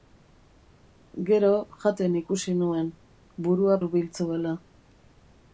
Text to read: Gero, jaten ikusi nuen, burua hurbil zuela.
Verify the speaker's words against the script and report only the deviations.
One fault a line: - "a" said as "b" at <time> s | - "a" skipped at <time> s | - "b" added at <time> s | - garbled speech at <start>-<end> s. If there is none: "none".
none